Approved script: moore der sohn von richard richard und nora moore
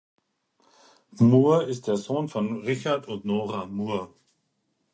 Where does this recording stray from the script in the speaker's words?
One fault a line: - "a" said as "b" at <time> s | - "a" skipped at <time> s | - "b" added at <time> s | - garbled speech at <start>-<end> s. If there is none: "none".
- "ist" added at 1.6 s
- "richard" skipped at 3.1 s